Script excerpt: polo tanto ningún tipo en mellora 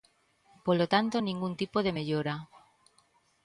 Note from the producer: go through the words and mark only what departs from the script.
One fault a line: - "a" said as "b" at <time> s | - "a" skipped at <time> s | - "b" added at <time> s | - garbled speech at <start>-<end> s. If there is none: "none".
- "en" said as "de" at 1.9 s